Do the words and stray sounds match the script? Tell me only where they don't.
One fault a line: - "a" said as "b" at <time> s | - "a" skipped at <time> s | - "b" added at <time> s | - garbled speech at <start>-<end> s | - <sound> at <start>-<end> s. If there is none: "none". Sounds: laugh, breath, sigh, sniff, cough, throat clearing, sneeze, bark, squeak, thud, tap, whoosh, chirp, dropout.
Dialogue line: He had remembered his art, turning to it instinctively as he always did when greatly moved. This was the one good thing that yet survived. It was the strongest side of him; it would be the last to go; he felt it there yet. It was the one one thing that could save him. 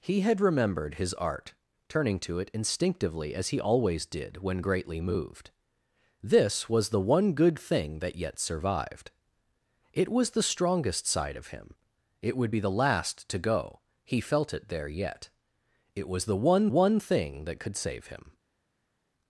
none